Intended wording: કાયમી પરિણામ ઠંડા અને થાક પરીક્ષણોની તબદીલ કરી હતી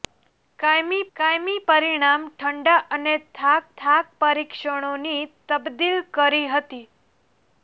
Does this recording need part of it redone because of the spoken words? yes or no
yes